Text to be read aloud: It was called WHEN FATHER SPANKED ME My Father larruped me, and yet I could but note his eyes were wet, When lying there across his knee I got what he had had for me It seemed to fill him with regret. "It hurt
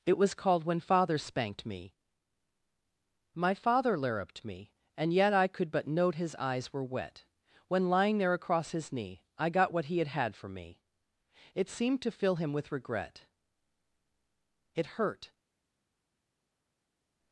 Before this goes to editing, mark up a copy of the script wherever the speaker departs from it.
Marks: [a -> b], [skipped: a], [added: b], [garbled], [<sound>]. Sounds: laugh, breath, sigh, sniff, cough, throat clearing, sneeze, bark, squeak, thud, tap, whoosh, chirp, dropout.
It was called WHEN FATHER SPANKED ME My Father larruped me, and yet I could but note his eyes were wet, When lying there across his knee I got what he had had for me It seemed to fill him with regret. "It hurt